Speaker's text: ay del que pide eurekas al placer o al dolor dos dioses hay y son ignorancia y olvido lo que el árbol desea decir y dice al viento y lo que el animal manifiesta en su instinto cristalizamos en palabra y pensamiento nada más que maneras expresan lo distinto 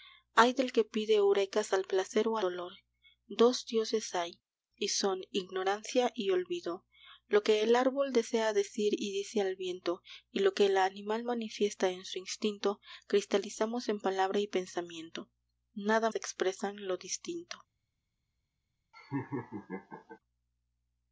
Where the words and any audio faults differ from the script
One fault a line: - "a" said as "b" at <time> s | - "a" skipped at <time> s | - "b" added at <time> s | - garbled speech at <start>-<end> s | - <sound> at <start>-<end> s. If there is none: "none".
- "al" skipped at 2.4 s
- "más que maneras" skipped at 16.1 s
- laugh at 18.9-20.2 s